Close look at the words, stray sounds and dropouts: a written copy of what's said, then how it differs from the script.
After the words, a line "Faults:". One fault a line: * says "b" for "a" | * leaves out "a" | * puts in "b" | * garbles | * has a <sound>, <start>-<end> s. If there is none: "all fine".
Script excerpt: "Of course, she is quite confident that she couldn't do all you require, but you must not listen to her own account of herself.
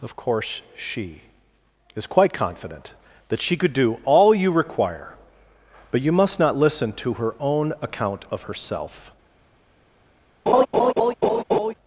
"Of course, she is quite confident that she could do all you require, but you must not listen to her own account of herself.
Faults:
* says "could" for "couldn't"
* has a laugh, 10.5-11.7 s